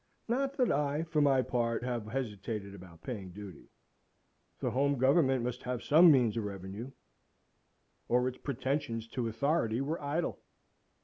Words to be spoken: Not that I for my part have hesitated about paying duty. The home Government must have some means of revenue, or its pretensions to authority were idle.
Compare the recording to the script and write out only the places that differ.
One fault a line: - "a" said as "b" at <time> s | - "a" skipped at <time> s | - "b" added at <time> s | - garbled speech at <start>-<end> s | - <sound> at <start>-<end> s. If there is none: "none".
none